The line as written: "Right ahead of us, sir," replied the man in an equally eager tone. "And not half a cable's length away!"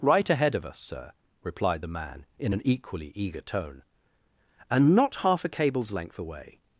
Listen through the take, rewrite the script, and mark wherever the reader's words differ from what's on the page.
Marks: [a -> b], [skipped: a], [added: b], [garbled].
"Right ahead of us, sir," replied the man in an equally eager tone. "And not half a cable's length away!"